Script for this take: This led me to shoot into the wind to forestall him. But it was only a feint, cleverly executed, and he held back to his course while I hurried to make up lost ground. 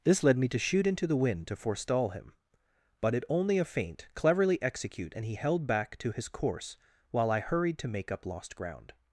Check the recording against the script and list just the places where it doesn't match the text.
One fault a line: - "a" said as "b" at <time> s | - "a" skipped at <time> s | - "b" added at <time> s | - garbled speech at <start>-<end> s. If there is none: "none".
- "was" skipped at 3.2 s
- "executed" said as "execute" at 4.6 s